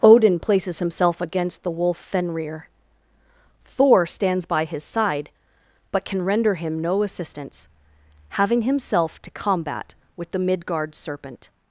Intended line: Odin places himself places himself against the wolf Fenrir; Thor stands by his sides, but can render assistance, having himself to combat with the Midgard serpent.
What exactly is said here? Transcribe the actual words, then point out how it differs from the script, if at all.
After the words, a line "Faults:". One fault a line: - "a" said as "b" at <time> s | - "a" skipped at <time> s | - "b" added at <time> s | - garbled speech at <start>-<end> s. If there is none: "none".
Odin places himself against the wolf Fenrir; Thor stands by his side, but can render him no assistance, having himself to combat with the Midgard serpent.
Faults:
- "places himself" skipped at 1.2 s
- "sides" said as "side" at 4.8 s
- "him no" added at 6.5 s